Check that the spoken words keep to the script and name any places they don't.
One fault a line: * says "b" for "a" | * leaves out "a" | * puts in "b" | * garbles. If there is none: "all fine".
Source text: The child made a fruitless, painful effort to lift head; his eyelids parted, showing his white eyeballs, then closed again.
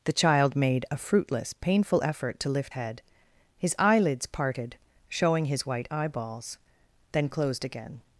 all fine